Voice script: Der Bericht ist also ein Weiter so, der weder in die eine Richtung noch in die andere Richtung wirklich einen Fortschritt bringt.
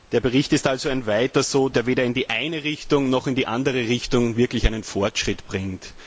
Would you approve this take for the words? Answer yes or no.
yes